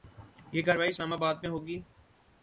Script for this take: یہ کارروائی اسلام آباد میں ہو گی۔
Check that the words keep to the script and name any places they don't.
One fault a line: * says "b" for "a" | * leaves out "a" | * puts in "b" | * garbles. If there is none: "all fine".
all fine